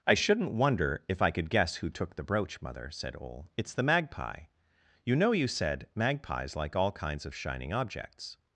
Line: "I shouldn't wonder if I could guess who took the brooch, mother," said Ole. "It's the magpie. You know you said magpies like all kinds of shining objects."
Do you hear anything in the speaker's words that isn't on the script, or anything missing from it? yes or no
no